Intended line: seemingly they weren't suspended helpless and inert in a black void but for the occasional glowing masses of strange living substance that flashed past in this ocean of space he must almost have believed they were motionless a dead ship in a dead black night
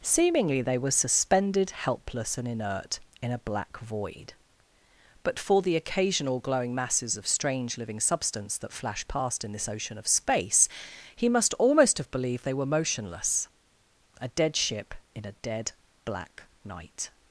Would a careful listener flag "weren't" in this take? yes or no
yes